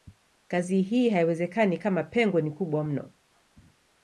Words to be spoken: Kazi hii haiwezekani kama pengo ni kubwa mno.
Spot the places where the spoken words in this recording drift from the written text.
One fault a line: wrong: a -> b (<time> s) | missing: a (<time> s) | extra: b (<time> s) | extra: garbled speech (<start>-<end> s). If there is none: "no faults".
no faults